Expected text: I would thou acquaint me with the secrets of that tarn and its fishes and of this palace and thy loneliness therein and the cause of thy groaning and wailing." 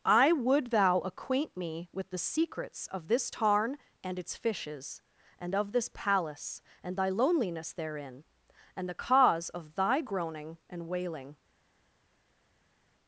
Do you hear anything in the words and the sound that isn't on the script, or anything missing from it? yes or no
yes